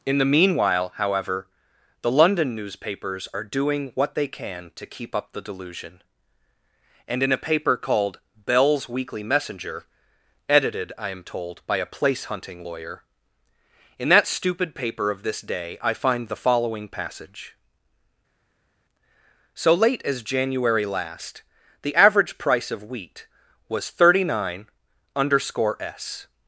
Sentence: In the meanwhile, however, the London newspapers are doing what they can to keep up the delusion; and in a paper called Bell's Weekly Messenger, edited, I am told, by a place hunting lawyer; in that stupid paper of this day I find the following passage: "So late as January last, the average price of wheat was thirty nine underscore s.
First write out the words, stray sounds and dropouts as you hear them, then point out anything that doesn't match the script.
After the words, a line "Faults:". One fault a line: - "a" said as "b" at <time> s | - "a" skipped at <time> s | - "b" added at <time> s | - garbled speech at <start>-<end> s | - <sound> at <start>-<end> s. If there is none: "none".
In the meanwhile, however, the London newspapers are doing what they can to keep up the delusion; and in a paper called Bell's Weekly Messenger, edited, I am told, by a place hunting lawyer; in that stupid paper of this day I find the following passage: "So late as January last, the average price of wheat was thirty nine underscore s.
Faults:
none